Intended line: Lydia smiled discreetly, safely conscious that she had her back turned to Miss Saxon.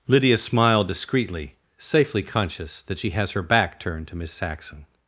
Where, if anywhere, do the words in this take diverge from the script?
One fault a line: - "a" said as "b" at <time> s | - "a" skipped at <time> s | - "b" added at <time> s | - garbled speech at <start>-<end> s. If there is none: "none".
- "had" said as "has" at 3.1 s